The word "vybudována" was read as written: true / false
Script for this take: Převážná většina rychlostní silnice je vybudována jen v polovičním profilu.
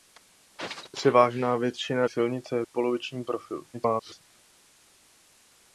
false